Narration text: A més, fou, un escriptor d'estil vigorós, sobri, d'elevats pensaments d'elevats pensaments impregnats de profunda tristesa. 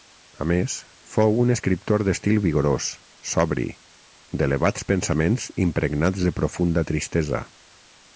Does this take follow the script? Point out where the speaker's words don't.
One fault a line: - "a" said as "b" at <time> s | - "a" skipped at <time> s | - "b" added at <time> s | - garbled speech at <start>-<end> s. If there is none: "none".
- "d'elevats pensaments" skipped at 5.5 s